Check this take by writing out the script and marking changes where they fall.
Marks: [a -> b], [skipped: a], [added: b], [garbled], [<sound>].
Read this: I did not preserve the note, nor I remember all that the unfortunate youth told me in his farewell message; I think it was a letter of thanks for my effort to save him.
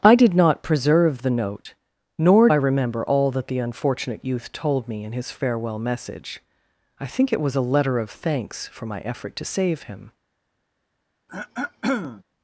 I did not preserve the note, nor I remember all that the unfortunate youth told me in his farewell message; I think it was a letter of thanks for my effort to save him. [throat clearing]